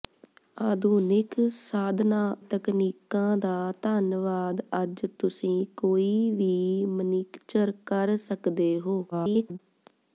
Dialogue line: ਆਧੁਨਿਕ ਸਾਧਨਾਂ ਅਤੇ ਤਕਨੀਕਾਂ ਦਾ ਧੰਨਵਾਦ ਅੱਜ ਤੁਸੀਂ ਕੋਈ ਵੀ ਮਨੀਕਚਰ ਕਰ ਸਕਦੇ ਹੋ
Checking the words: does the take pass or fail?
fail